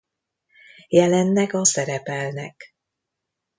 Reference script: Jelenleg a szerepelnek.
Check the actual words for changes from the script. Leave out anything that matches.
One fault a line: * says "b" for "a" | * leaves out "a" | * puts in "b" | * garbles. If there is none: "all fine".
all fine